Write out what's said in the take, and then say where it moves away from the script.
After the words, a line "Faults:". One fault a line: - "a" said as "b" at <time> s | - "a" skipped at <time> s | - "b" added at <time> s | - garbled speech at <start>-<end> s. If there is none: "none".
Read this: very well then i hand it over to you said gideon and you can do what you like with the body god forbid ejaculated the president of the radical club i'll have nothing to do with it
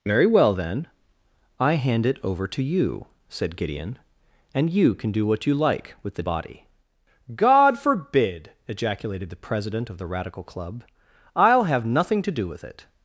very well then i hand it over to you said gideon and you can do what you like with the body god forbid ejaculated the president of the radical club i'll have nothing to do with it
Faults:
none